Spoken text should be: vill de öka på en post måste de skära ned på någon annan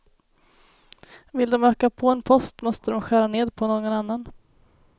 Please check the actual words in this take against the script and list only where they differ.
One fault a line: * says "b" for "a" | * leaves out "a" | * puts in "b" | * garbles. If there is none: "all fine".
all fine